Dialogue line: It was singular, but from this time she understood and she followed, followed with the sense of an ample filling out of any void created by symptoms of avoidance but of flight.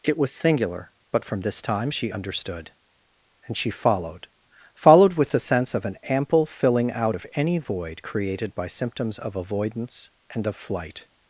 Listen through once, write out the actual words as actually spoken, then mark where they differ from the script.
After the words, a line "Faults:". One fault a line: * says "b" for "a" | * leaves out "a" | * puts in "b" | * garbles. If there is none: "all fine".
It was singular, but from this time she understood and she followed, followed with the sense of an ample filling out of any void created by symptoms of avoidance and of flight.
Faults:
* says "and" for "but"